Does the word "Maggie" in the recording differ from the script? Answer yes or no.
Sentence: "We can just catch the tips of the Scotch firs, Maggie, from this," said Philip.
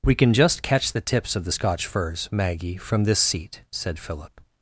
no